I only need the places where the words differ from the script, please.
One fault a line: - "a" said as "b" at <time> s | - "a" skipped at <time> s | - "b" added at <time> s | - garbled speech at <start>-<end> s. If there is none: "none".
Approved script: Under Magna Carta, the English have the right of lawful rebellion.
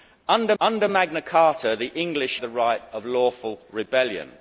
- "under" added at 0.6 s
- "have" skipped at 2.4 s